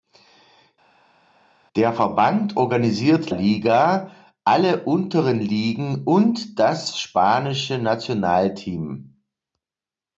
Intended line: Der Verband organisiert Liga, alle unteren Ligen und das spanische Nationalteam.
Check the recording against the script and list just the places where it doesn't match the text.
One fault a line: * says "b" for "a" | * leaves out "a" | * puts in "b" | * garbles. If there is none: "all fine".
all fine